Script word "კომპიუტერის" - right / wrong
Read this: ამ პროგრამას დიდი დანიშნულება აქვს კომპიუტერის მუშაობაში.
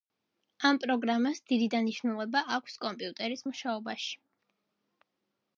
right